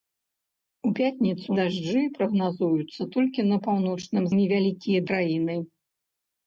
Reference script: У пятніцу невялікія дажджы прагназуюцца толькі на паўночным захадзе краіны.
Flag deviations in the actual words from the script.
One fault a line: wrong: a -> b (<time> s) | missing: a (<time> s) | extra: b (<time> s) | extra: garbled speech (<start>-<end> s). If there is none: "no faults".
missing: невялікія (1.5 s)
wrong: захадзе -> невялікія (4.4 s)